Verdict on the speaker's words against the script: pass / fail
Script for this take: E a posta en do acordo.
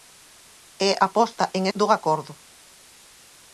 pass